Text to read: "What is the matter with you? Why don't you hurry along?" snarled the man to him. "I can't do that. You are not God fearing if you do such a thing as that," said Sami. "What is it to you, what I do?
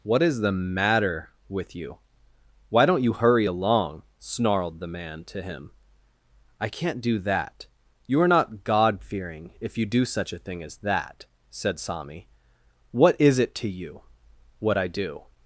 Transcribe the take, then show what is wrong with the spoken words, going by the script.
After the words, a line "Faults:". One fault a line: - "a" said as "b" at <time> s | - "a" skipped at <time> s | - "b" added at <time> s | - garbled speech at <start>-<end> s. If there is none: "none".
"What is the matter with you? Why don't you hurry along?" snarled the man to him. "I can't do that. You are not God fearing if you do such a thing as that," said Sami. "What is it to you, what I do?
Faults:
none